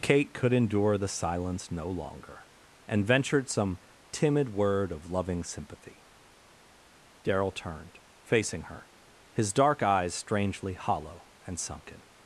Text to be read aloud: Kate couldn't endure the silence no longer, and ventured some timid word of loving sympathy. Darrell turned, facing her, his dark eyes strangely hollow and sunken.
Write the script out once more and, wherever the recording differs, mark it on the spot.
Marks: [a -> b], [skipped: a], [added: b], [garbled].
Kate [couldn't -> could] endure the silence no longer, and ventured some timid word of loving sympathy. Darrell turned, facing her, his dark eyes strangely hollow and sunken.